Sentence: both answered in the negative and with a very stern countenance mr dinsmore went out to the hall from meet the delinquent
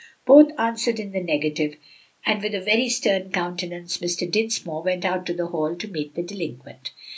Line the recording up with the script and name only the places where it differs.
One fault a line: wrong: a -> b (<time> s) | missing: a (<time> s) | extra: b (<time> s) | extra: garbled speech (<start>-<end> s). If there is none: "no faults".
wrong: from -> to (5.8 s)